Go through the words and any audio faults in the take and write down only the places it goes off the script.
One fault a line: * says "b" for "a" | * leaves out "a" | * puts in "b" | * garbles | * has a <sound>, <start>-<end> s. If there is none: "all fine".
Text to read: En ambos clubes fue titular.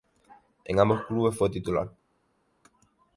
all fine